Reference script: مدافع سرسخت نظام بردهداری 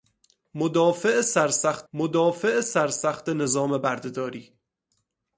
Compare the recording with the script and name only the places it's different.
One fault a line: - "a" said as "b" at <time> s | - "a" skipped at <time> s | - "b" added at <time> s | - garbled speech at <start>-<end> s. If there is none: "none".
- "مدافع سرسخت" added at 1.9 s